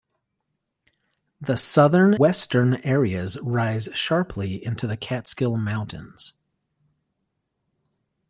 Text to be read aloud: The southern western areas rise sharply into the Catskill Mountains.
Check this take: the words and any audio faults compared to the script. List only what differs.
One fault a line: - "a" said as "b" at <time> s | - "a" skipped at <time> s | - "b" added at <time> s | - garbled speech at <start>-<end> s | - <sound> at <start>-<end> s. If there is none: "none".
none